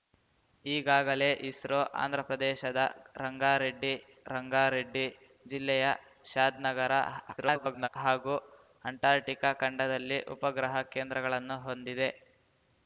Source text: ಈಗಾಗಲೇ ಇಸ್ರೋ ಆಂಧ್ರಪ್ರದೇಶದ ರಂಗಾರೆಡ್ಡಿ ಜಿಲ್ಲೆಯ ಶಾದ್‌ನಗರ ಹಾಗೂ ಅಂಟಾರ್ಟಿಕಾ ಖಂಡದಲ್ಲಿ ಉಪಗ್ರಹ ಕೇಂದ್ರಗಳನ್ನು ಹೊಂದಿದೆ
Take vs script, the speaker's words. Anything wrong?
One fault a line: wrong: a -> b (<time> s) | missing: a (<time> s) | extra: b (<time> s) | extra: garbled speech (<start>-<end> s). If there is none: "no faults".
extra: ರಂಗಾರೆಡ್ಡಿ (4.3 s)
extra: garbled speech (7.4-7.9 s)